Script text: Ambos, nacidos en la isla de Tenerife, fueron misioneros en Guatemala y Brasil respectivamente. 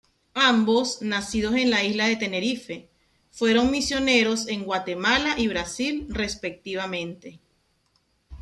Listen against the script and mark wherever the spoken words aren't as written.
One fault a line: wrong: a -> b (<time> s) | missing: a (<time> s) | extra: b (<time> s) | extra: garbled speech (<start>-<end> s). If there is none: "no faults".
no faults